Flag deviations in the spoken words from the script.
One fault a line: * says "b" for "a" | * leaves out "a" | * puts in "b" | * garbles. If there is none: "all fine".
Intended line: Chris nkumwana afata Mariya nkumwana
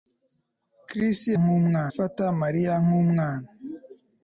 all fine